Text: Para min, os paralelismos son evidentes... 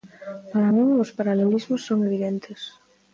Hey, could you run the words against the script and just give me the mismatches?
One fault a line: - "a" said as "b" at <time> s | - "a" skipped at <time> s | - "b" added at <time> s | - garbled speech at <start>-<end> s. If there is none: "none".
none